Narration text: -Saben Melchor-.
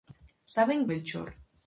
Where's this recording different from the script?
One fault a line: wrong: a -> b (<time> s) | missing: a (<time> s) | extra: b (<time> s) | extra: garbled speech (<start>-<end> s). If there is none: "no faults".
no faults